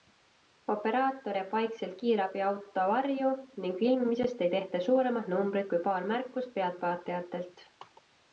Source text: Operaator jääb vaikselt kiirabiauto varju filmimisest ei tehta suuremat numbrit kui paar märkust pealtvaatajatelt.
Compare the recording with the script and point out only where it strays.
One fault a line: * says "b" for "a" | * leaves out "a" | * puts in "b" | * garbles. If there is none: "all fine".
* puts in "ning"